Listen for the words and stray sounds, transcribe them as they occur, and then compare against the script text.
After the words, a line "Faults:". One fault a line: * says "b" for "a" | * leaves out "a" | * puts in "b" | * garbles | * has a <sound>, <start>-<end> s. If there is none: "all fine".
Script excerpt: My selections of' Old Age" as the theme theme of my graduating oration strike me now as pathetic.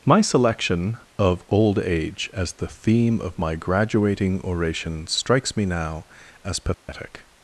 My selection of' Old Age" as the theme of my graduating oration strikes me now as pathetic.
Faults:
* says "selection" for "selections"
* leaves out "theme"
* says "strikes" for "strike"
* has a dropout, 6.7-6.9 s